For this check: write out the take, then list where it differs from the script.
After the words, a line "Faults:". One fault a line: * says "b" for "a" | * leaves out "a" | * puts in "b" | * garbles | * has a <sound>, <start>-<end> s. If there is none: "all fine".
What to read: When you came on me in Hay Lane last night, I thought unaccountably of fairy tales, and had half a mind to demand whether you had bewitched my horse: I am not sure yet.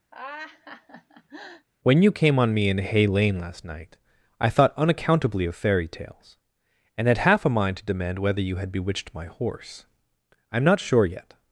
When you came on me in Hay Lane last night, I thought unaccountably of fairy tales, and had half a mind to demand whether you had bewitched my horse: I am not sure yet.
Faults:
* has a laugh, 0.1-1.7 s